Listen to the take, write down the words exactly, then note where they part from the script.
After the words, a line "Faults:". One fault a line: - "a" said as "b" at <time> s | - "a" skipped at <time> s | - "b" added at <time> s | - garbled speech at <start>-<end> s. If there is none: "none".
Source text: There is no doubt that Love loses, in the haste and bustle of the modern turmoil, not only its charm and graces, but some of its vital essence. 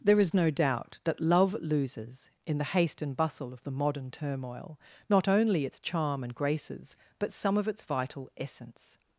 There is no doubt that Love loses, in the haste and bustle of the modern turmoil, not only its charm and graces, but some of its vital essence.
Faults:
none